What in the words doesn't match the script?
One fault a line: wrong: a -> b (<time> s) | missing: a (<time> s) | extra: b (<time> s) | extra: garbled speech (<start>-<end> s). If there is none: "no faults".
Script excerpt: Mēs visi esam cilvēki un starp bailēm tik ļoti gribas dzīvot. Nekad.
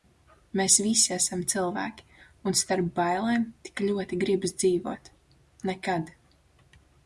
no faults